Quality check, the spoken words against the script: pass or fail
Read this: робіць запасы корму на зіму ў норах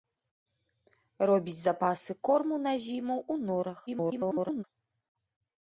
fail